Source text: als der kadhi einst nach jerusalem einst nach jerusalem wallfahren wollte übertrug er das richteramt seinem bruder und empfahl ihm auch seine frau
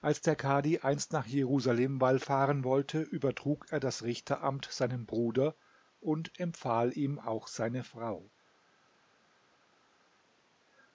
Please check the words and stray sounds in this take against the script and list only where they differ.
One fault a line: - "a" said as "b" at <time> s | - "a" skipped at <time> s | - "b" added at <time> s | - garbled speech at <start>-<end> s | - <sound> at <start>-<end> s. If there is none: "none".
- "einst nach jerusalem" skipped at 2.0 s